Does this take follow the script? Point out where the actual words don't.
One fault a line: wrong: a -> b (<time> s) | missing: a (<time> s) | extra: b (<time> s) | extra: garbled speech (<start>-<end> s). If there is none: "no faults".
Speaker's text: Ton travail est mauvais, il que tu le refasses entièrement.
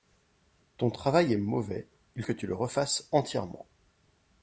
no faults